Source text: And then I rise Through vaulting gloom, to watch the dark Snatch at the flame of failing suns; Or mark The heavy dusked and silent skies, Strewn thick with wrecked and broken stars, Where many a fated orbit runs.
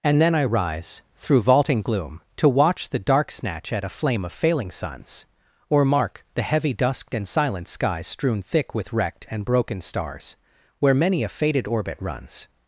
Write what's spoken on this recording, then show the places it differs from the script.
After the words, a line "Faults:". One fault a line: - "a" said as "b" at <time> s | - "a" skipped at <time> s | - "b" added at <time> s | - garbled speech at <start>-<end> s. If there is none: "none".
And then I rise Through vaulting gloom, to watch the dark Snatch at a flame of failing suns; Or mark The heavy dusked and silent skies, Strewn thick with wrecked and broken stars, Where many a fated orbit runs.
Faults:
- "the" said as "a" at 3.8 s